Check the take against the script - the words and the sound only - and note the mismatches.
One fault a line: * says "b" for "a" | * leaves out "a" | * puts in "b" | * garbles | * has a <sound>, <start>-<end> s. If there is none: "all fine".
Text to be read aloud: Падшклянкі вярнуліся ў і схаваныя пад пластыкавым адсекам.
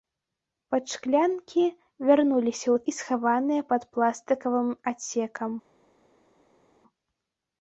all fine